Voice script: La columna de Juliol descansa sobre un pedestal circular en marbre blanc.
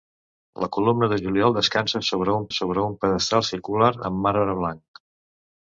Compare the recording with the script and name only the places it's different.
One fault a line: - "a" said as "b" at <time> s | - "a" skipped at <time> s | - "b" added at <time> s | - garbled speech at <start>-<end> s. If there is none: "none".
- "sobre un" added at 2.6 s